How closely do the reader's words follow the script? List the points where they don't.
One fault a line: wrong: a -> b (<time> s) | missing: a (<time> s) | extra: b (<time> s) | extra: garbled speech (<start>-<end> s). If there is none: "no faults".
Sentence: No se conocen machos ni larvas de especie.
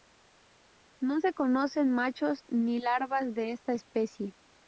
extra: esta (3.5 s)